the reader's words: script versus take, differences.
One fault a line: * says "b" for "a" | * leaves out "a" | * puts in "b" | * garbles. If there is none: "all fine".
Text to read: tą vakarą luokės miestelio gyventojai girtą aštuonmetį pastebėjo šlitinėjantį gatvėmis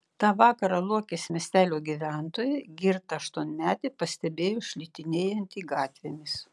all fine